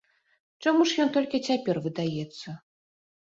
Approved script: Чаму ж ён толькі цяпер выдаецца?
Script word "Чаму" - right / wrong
right